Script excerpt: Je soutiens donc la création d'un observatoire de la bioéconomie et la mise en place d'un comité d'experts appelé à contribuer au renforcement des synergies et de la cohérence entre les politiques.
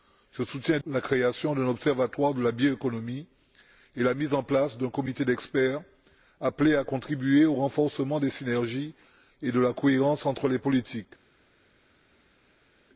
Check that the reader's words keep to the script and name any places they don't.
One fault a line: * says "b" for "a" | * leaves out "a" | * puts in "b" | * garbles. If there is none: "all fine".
* leaves out "donc"